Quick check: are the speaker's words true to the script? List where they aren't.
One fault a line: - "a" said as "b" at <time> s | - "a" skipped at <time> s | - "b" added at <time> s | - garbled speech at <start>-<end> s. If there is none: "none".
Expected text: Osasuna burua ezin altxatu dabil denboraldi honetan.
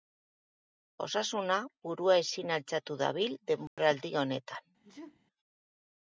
none